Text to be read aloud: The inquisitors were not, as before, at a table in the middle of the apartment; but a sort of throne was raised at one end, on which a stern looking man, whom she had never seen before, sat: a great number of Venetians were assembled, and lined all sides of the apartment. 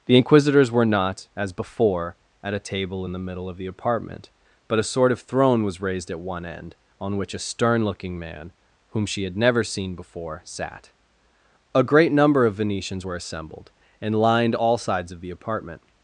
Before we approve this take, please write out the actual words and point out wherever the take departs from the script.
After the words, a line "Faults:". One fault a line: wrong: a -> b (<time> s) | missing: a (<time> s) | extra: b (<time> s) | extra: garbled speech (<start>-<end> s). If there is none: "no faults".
The inquisitors were not, as before, at a table in the middle of the apartment; but a sort of throne was raised at one end, on which a stern looking man, whom she had never seen before, sat: a great number of Venetians were assembled, and lined all sides of the apartment.
Faults:
no faults